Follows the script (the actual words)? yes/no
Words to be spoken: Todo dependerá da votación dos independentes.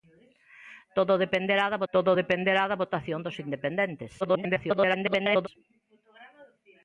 no